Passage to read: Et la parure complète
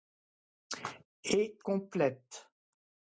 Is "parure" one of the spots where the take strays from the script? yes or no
yes